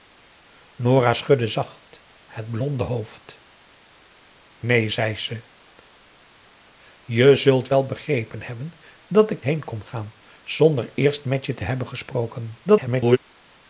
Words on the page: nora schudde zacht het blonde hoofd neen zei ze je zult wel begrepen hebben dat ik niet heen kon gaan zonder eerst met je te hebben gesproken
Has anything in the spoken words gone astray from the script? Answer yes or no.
yes